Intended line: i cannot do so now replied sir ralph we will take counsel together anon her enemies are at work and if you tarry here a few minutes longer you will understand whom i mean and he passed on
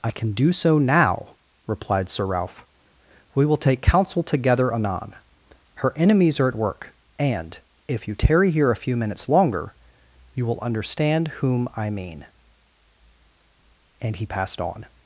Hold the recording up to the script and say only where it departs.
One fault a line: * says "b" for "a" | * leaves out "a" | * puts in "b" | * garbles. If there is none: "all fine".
* says "can" for "cannot"